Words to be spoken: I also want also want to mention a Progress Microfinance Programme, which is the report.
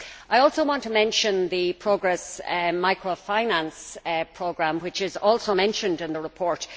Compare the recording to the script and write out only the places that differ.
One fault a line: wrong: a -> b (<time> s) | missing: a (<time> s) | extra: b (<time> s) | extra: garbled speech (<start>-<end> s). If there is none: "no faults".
missing: also want (0.8 s)
wrong: a -> the (1.5 s)
extra: also mentioned in (5.2 s)